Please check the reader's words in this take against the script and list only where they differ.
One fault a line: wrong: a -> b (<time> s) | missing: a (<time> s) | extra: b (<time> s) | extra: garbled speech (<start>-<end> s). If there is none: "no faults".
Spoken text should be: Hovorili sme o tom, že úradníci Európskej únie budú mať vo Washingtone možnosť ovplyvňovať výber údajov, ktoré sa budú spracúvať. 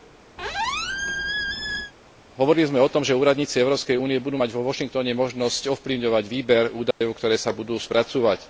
no faults